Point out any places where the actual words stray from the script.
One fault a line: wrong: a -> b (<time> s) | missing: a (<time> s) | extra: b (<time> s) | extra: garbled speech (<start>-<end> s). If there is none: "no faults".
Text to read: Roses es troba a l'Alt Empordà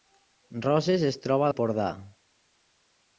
missing: l'Alt (1.5 s)